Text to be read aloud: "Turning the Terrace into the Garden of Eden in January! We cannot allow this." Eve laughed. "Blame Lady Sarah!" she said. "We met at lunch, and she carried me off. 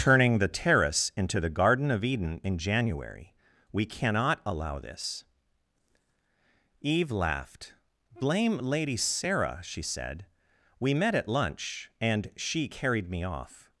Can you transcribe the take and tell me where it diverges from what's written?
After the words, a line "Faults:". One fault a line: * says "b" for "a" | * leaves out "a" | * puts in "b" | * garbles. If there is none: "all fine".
"Turning the Terrace into the Garden of Eden in January! We cannot allow this." Eve laughed. "Blame Lady Sarah!" she said. "We met at lunch, and she carried me off.
Faults:
all fine